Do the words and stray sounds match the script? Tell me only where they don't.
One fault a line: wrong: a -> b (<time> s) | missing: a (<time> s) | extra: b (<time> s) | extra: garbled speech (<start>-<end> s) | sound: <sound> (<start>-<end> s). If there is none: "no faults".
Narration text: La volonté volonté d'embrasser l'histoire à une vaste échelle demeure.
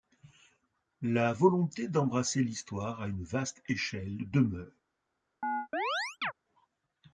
missing: volonté (1.9 s)
sound: chirp (5.4-6.3 s)